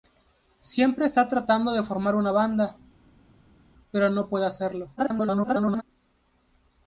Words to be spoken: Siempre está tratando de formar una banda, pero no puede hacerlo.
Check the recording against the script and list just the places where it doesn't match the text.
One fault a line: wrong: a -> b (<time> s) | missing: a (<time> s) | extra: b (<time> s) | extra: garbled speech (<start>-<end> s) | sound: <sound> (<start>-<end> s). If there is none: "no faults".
extra: garbled speech (5.0-5.8 s)